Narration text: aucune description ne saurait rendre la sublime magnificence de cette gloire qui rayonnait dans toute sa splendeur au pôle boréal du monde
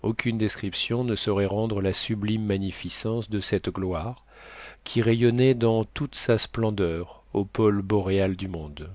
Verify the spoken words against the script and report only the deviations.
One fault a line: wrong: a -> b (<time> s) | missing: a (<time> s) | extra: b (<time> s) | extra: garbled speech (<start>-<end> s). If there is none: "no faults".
no faults